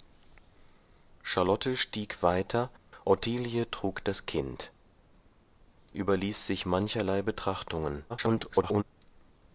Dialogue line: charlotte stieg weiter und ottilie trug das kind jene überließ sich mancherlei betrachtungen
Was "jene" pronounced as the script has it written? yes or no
no